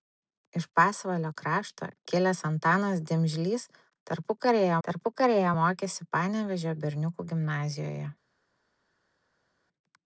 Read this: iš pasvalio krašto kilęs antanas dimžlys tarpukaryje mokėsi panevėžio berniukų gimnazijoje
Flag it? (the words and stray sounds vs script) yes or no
yes